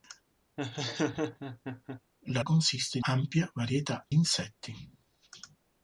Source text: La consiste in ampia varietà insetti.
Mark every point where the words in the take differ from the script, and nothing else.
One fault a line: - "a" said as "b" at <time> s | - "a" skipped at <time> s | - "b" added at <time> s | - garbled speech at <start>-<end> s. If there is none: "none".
none